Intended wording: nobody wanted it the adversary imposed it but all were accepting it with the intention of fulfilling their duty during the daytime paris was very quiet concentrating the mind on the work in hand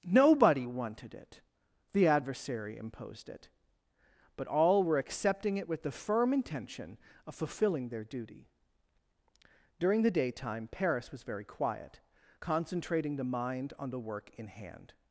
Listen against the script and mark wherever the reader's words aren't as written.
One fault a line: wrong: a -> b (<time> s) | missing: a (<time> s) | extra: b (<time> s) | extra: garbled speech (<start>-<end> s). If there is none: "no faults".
extra: firm (5.9 s)